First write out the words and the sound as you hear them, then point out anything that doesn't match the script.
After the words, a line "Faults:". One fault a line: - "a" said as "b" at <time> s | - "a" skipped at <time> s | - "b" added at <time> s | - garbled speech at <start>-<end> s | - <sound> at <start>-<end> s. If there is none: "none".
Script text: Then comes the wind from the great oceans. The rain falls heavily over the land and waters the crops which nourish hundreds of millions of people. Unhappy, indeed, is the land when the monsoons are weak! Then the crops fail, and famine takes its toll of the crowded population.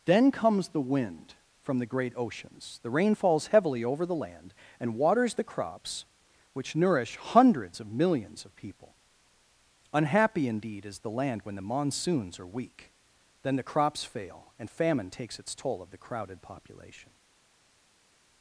Then comes the wind from the great oceans. The rain falls heavily over the land and waters the crops which nourish hundreds of millions of people. Unhappy, indeed, is the land when the monsoons are weak! Then the crops fail, and famine takes its toll of the crowded population.
Faults:
none